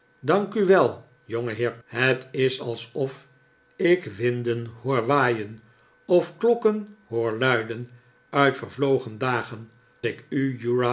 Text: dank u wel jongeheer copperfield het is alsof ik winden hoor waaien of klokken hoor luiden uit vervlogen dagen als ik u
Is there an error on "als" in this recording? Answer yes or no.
yes